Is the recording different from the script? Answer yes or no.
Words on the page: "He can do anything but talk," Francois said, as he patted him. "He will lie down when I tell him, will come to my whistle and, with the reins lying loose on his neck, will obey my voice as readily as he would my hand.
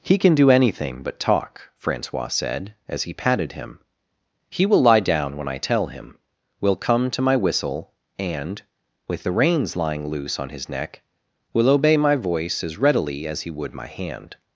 no